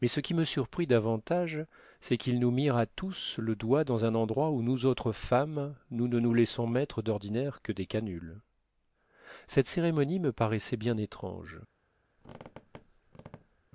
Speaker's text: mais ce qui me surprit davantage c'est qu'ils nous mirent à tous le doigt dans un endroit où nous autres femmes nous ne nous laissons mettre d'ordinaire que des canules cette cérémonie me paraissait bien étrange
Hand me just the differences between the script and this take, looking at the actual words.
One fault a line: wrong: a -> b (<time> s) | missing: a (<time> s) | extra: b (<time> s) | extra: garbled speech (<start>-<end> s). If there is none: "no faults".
no faults